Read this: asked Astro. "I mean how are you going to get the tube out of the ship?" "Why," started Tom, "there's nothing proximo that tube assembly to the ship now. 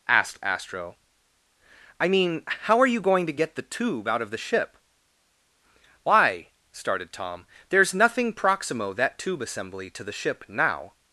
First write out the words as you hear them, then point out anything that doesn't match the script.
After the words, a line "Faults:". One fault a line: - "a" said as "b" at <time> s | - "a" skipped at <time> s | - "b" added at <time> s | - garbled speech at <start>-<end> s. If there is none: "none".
asked Astro. "I mean how are you going to get the tube out of the ship?" "Why," started Tom, "there's nothing proximo that tube assembly to the ship now.
Faults:
none